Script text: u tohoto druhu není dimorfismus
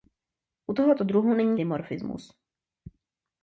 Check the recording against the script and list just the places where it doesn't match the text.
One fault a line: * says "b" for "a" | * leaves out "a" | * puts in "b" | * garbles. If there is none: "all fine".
all fine